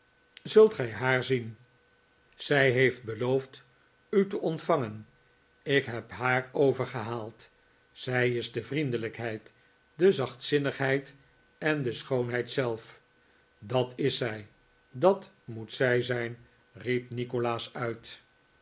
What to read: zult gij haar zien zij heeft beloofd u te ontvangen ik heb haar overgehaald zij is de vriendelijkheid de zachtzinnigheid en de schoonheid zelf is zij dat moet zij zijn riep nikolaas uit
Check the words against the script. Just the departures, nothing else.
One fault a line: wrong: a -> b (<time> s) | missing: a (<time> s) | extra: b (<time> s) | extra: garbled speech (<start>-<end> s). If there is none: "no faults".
extra: dat (13.6 s)